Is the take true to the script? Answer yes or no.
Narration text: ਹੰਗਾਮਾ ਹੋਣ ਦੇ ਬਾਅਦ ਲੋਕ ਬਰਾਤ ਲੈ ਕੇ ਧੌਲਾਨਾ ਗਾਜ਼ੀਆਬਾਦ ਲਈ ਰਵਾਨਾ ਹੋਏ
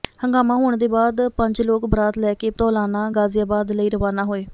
no